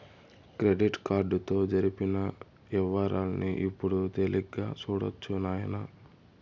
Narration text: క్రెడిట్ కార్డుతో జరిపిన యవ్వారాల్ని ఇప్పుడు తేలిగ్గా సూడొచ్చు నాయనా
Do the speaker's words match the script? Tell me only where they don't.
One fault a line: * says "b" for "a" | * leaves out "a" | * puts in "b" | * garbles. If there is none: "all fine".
all fine